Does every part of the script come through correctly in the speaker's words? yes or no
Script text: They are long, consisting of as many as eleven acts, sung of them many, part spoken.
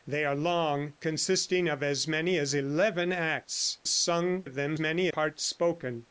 yes